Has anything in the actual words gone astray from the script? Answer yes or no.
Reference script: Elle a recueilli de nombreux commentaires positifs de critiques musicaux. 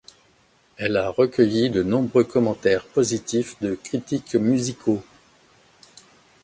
no